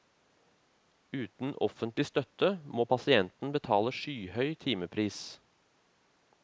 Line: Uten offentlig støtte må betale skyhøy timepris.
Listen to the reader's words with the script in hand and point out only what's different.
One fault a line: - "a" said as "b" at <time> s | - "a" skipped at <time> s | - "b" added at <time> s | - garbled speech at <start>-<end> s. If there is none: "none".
- "pasienten" added at 2.9 s